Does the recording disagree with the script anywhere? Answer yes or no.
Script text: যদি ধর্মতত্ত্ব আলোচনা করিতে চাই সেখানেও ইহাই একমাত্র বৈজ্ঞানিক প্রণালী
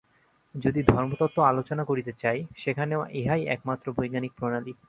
no